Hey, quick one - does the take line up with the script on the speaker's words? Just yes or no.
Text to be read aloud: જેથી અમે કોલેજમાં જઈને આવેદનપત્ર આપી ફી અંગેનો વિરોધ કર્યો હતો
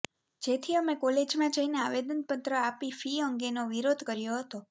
yes